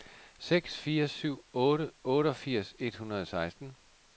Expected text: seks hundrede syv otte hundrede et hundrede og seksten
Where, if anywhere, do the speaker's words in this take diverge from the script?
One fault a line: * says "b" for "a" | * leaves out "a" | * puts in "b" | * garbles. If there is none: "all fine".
* says "fire" for "hundrede"
* says "otteogfirs" for "hundrede"